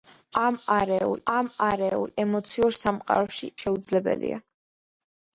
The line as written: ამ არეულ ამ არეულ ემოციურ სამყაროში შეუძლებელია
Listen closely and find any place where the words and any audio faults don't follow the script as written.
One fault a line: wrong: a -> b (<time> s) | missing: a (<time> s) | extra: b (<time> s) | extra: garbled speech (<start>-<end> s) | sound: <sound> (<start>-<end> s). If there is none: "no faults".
no faults